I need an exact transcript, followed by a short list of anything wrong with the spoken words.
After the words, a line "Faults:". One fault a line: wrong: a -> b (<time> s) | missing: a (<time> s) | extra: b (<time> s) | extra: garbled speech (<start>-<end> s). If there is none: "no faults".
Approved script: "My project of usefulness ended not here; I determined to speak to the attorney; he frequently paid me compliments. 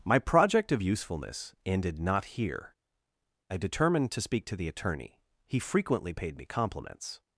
"My project of usefulness ended not here; I determined to speak to the attorney; he frequently paid me compliments.
Faults:
no faults